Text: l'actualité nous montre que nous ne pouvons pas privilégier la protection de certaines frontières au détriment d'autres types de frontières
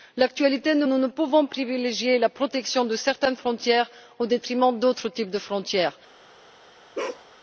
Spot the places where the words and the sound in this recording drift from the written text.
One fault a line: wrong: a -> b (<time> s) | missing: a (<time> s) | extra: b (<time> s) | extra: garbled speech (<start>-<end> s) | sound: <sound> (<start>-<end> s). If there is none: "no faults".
missing: montre que (0.9 s)
missing: pas (1.5 s)
sound: bark (6.9-7.2 s)